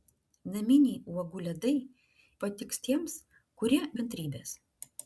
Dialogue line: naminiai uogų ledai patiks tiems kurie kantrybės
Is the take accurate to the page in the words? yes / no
yes